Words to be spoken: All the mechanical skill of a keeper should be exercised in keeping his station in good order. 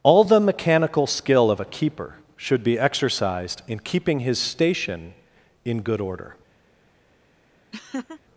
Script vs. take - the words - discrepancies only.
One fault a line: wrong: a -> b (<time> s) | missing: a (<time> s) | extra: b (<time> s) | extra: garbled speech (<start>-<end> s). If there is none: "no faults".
no faults